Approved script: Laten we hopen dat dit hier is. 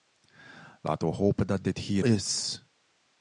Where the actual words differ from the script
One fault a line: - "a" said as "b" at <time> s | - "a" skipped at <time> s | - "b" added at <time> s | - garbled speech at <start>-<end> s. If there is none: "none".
none